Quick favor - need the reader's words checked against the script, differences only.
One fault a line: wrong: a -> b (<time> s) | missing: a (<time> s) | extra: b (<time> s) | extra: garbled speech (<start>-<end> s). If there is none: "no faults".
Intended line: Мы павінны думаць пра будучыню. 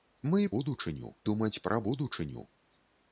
wrong: павінны -> будучыню (0.6 s)